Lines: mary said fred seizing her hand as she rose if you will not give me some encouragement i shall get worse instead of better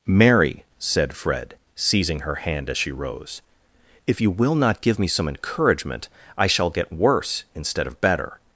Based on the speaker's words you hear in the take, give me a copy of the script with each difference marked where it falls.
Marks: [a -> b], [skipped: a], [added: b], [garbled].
mary said fred seizing her hand as she rose if you will not give me some encouragement i shall get worse instead of better